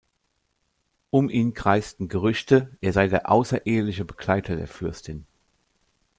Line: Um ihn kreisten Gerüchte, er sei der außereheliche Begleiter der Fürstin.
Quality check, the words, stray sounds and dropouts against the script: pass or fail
pass